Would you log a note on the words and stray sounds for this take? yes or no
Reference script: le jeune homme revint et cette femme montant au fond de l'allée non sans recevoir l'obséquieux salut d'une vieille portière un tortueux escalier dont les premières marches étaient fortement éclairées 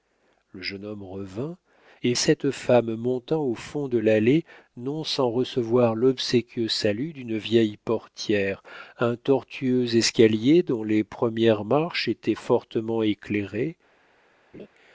yes